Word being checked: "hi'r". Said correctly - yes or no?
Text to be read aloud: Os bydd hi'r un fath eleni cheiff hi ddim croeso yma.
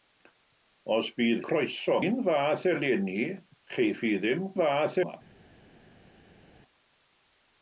no